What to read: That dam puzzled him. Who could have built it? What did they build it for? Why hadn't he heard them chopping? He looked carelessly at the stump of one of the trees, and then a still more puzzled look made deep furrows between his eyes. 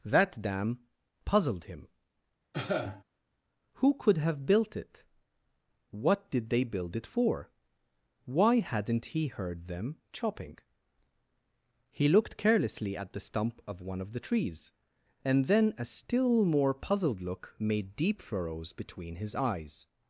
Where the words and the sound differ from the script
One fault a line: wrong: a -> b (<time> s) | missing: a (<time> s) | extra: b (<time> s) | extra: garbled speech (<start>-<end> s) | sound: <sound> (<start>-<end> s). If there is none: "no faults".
sound: cough (2.5-3.0 s)